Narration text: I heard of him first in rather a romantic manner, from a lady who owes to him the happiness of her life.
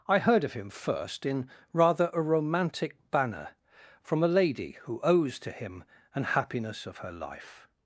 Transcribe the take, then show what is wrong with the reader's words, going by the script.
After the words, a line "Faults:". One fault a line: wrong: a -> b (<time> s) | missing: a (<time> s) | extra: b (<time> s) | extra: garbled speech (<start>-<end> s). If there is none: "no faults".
I heard of him first in rather a romantic banner, from a lady who owes to him an happiness of her life.
Faults:
wrong: manner -> banner (3.1 s)
wrong: the -> an (6.1 s)